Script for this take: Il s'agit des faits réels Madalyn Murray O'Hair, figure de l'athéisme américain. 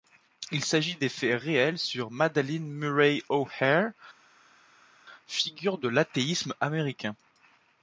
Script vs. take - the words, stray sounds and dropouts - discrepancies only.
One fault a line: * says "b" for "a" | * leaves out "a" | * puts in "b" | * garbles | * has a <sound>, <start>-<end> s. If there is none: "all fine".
* puts in "sur"